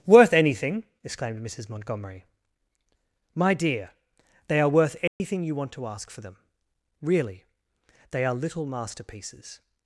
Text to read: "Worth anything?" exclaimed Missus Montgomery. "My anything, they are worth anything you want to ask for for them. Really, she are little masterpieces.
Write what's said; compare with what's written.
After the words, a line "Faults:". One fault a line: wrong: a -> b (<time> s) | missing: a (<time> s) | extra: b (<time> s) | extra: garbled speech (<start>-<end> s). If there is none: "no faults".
"Worth anything?" exclaimed Missus Montgomery. "My dear, they are worth anything you want to ask for them. Really, they are little masterpieces.
Faults:
wrong: anything -> dear (3.5 s)
missing: for (6.2 s)
wrong: she -> they (8.1 s)